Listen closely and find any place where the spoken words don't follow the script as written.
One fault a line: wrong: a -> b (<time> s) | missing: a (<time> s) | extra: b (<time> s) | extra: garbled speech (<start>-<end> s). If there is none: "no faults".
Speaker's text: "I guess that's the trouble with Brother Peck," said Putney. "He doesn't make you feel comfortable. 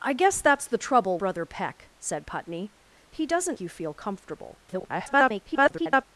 missing: with (1.2 s)
missing: make (3.6 s)
extra: garbled speech (4.7-6.0 s)